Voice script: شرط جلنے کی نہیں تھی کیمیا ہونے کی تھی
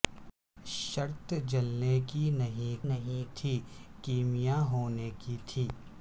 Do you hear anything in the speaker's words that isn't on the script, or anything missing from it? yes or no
yes